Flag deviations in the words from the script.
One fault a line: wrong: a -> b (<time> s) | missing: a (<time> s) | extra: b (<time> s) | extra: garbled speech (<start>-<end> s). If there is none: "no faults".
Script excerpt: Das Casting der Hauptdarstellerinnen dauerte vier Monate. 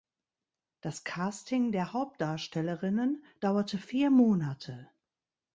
no faults